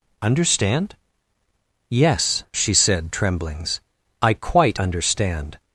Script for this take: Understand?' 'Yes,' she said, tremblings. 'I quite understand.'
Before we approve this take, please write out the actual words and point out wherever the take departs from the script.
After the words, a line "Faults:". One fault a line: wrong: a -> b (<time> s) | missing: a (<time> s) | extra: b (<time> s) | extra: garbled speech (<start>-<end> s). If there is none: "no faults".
Understand?' 'Yes,' she said, tremblings. 'I quite understand.'
Faults:
no faults